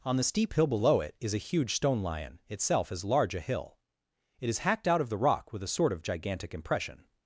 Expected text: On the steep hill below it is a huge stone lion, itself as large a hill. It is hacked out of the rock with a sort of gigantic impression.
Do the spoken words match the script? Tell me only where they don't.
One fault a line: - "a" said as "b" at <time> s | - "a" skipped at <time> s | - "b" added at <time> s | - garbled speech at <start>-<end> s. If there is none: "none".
none